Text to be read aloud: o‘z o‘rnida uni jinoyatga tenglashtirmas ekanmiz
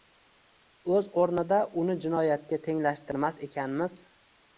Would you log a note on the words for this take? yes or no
no